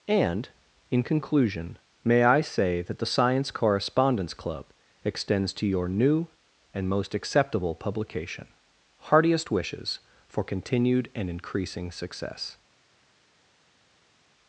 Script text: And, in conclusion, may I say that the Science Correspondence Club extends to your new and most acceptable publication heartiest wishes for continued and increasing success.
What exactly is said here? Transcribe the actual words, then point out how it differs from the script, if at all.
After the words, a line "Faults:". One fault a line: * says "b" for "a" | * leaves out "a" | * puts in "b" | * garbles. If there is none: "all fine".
And, in conclusion, may I say that the Science Correspondence Club extends to your new and most acceptable publication heartiest wishes for continued and increasing success.
Faults:
all fine